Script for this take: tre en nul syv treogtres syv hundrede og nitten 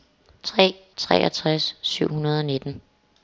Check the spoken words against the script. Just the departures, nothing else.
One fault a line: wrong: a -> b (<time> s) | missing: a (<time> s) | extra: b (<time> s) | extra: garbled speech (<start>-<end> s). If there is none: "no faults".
missing: en nul syv (0.8 s)